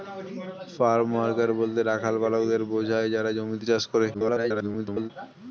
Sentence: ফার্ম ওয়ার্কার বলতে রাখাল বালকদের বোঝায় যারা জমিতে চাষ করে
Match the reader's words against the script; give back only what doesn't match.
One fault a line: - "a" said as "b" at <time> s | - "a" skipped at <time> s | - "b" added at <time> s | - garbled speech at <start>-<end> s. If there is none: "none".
- garbled speech at 4.1-5.1 s